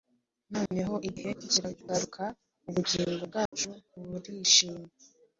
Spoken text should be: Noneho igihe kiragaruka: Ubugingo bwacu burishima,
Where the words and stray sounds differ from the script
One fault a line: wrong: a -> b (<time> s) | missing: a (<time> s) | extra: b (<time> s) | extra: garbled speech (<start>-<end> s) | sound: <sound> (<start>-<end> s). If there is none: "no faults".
sound: dropout (0.7-0.7 s)
sound: dropout (3.5-3.5 s)